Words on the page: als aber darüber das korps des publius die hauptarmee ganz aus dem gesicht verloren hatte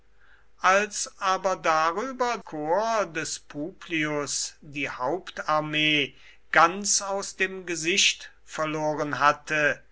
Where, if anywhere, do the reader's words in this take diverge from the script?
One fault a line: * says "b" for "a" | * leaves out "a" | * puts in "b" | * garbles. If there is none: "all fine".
* leaves out "das"